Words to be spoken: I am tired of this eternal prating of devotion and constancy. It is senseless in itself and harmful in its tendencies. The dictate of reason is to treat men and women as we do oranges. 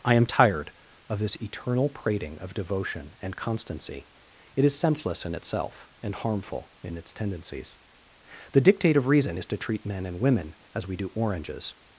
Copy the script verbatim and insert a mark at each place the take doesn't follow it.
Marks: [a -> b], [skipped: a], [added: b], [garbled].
I am tired of this eternal prating of devotion and constancy. It is senseless in itself and harmful in its tendencies. The dictate of reason is to treat men and women as we do oranges.